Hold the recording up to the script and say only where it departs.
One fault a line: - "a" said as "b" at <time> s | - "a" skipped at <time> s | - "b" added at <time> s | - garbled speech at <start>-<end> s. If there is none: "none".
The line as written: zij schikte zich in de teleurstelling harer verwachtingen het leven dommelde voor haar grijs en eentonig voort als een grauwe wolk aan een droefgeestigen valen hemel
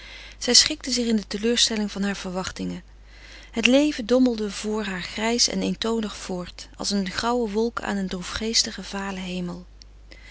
none